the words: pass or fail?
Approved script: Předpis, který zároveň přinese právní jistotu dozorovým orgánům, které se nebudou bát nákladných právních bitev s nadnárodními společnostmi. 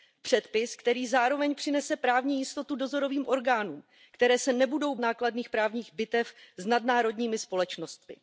fail